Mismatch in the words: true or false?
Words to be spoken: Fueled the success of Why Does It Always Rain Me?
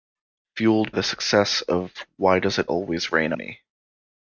false